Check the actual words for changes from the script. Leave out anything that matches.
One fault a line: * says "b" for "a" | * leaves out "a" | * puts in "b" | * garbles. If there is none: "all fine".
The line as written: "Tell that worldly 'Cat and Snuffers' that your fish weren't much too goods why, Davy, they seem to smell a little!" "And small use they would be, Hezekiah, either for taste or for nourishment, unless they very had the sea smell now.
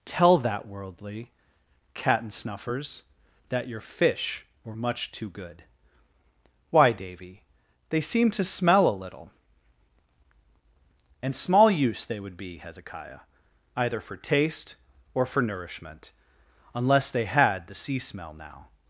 * says "were" for "weren't"
* says "good" for "goods"
* leaves out "very"